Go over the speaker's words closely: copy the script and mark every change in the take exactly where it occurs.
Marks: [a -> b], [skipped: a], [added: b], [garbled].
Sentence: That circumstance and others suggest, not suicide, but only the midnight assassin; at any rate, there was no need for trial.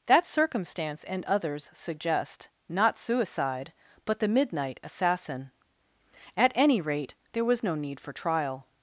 That circumstance and others suggest, not suicide, but [skipped: only] the midnight assassin; at any rate, there was no need for trial.